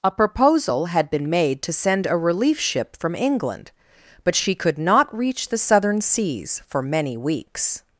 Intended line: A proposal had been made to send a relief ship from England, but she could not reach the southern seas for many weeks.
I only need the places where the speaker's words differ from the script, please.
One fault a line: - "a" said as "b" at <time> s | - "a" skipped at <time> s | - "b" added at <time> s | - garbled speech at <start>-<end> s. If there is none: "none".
none